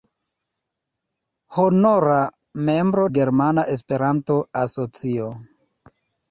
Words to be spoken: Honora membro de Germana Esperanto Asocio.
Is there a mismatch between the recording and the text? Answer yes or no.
yes